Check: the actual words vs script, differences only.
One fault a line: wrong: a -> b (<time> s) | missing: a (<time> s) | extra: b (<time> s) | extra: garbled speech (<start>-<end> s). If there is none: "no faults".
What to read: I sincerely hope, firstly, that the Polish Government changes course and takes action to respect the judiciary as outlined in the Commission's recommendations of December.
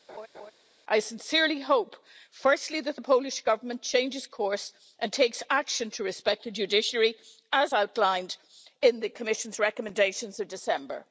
no faults